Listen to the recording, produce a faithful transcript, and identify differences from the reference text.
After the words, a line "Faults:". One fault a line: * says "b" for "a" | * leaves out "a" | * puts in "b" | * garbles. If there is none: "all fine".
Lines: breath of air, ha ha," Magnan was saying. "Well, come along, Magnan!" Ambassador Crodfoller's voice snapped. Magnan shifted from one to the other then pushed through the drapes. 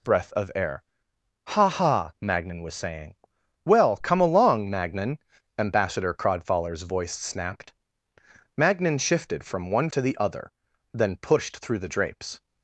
breath of air, ha ha," Magnan was saying. "Well, come along, Magnan!" Ambassador Crodfoller's voice snapped. Magnan shifted from one to the other then pushed through the drapes.
Faults:
all fine